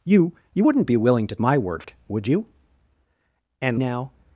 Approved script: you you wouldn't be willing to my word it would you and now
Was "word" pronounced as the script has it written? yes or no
yes